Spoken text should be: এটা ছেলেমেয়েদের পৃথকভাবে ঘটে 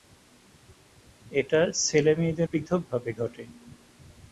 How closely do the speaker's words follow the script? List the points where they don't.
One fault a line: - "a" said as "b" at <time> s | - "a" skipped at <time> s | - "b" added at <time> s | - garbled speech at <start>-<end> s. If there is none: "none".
none